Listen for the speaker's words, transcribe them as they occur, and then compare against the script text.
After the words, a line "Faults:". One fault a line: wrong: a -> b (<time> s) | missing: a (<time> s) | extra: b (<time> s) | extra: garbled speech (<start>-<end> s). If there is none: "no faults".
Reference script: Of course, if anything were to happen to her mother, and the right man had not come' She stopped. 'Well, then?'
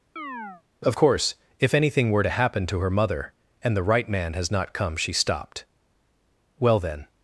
Of course, if anything were to happen to her mother, and the right man has not come' She stopped. 'Well, then?'
Faults:
wrong: had -> has (4.3 s)